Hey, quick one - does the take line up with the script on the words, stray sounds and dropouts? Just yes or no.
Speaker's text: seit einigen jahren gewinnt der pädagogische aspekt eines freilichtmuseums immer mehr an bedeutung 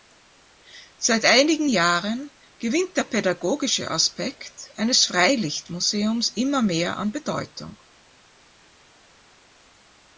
yes